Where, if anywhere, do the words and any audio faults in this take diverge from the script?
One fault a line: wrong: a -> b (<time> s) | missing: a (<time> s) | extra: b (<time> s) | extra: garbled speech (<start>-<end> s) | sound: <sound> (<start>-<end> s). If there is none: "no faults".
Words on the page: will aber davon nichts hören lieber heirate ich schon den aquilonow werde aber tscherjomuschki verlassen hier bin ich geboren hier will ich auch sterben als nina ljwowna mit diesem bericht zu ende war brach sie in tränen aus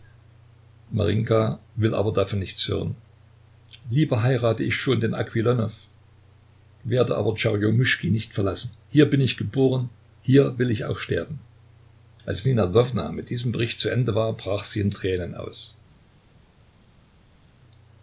extra: nicht (8.1 s)